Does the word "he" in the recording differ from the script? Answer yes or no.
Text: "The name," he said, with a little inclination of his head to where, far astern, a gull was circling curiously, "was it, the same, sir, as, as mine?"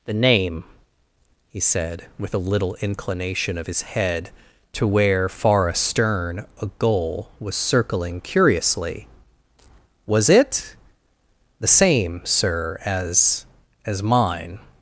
no